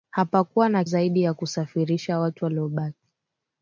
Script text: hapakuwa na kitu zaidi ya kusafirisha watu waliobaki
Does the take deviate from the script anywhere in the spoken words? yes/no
yes